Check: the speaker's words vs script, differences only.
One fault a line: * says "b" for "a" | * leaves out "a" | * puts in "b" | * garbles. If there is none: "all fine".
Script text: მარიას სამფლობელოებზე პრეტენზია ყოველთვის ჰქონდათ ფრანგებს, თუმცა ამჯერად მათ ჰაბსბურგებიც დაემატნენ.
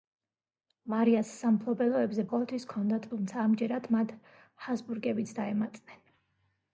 * leaves out "პრეტენზია"
* leaves out "ფრანგებს"